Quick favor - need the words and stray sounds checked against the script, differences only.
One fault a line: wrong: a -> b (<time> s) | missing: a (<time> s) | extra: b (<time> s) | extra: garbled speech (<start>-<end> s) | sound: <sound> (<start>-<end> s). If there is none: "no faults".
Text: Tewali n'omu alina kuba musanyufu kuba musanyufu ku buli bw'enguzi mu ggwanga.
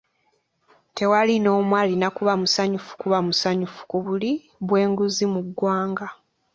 no faults